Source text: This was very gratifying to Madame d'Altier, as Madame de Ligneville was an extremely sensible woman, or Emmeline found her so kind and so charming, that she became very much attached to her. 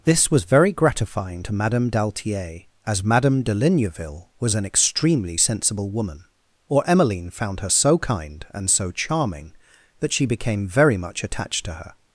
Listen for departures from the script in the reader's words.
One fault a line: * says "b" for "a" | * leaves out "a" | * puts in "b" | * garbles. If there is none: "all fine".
all fine